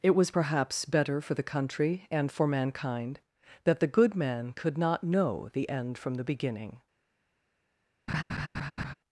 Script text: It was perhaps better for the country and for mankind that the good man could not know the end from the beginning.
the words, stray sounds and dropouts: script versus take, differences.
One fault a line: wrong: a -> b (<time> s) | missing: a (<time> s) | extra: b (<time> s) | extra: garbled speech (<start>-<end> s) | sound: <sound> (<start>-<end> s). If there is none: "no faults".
sound: laugh (8.1-8.9 s)